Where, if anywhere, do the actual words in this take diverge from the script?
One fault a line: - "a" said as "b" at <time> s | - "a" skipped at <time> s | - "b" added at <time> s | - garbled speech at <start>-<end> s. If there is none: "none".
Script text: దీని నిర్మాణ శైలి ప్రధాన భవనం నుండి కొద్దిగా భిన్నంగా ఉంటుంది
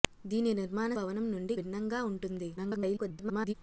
- "శైలి ప్రధాన" skipped at 0.9 s
- "కొద్దిగా" skipped at 1.6 s
- garbled speech at 2.6-3.5 s